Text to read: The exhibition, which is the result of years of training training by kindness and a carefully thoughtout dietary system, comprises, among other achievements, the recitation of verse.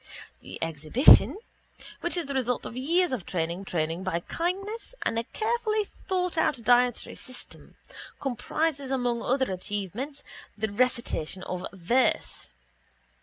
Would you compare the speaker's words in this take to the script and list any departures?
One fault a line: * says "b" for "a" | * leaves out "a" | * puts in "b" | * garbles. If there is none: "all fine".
all fine